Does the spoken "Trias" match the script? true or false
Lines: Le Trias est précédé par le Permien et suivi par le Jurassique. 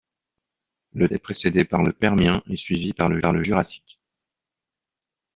false